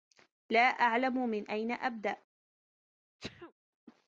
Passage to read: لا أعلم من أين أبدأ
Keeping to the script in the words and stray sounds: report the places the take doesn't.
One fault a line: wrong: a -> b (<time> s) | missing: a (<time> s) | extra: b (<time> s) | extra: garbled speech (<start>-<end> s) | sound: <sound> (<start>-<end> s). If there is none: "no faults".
sound: sneeze (3.2-3.5 s)